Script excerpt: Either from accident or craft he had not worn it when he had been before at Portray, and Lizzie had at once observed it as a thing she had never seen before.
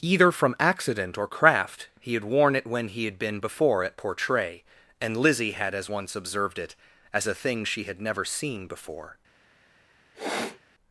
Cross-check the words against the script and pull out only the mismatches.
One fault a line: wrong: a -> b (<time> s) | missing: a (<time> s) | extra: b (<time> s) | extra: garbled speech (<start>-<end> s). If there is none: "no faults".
missing: not (2.2 s)
wrong: at -> as (5.7 s)